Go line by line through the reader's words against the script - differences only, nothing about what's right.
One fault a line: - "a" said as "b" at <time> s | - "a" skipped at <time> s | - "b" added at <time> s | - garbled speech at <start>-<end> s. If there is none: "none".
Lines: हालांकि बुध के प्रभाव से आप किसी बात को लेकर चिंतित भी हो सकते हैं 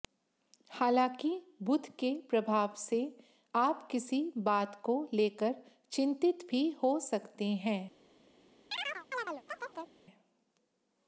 none